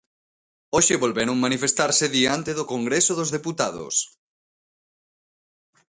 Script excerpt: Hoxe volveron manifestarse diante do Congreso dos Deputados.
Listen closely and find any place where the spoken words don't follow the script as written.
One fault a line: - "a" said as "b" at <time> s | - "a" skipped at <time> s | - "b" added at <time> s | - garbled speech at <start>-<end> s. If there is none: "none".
none